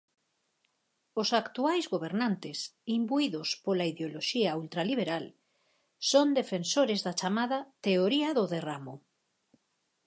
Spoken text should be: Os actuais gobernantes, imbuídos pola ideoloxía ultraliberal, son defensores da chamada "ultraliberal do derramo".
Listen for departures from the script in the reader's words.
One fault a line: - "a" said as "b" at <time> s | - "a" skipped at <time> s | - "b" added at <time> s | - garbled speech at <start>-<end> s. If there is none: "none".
- "ultraliberal" said as "teoría" at 7.9 s